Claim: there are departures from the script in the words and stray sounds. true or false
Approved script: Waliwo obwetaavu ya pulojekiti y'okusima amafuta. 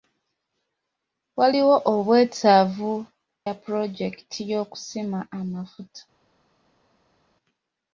false